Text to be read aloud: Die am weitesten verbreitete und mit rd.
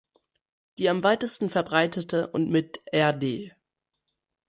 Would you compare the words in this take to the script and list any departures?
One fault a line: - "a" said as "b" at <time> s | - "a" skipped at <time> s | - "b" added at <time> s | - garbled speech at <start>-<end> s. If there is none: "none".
none